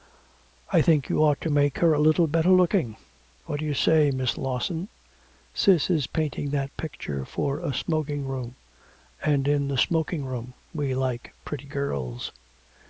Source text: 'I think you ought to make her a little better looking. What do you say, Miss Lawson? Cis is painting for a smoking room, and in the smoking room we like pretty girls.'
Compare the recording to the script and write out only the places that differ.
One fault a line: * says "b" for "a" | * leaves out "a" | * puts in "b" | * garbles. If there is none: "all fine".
* puts in "that picture"